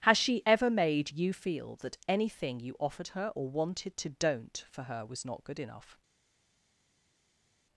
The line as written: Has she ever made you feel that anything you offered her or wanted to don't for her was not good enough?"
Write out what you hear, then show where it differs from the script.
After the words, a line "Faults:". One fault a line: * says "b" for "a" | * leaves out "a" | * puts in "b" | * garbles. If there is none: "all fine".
Has she ever made you feel that anything you offered her or wanted to don't for her was not good enough?"
Faults:
all fine